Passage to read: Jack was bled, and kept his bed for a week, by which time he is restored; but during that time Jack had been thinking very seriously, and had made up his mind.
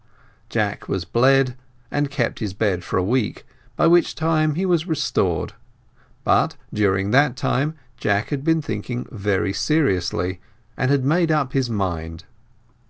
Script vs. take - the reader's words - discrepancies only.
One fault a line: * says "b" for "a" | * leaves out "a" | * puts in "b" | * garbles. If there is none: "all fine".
* says "was" for "is"